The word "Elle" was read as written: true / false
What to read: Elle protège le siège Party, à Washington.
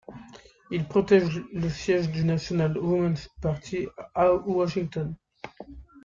false